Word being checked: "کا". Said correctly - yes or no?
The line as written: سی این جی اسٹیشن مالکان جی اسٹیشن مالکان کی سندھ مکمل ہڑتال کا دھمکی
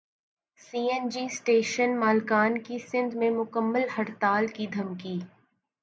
no